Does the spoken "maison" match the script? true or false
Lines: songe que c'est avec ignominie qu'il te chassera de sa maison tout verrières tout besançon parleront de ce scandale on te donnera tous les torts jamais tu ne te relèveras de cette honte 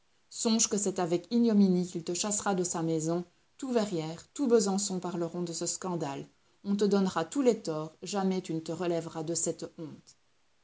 true